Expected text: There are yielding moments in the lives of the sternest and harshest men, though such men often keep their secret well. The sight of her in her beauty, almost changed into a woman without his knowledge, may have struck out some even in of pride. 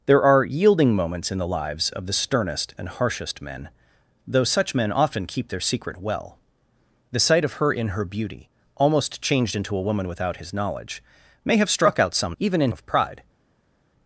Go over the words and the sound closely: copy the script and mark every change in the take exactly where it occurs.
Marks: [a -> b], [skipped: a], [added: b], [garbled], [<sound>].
There are yielding moments in the lives of the sternest and harshest men, though such men often keep their secret well. The sight of her in her beauty, almost changed into a woman without his knowledge, may have struck out some even in of pride.